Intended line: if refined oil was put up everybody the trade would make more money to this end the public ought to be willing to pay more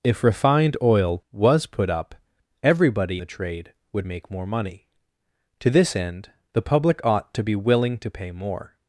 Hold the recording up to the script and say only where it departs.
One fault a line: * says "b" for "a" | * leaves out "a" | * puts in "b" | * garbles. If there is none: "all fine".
all fine